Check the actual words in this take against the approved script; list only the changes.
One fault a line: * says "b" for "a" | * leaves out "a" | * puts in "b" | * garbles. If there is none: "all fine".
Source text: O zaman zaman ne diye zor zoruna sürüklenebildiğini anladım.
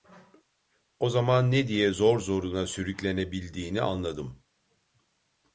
* leaves out "zaman"